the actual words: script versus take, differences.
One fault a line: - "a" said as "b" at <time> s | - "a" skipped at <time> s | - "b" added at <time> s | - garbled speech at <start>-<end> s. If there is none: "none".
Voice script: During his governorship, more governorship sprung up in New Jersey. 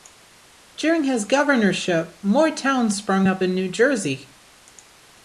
- "governorship" said as "towns" at 2.5 s